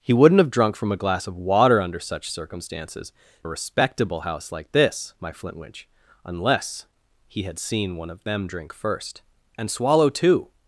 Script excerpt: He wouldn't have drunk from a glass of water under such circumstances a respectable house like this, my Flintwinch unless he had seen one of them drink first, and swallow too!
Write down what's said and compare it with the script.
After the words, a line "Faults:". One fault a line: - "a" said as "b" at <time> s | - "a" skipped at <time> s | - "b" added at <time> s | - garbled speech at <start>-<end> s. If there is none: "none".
He wouldn't have drunk from a glass of water under such circumstances a respectable house like this, my Flintwinch unless he had seen one of them drink first, and swallow too!
Faults:
none